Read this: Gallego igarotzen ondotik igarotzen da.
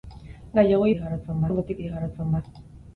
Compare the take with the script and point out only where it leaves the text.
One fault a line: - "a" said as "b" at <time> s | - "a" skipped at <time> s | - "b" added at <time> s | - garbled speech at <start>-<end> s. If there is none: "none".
none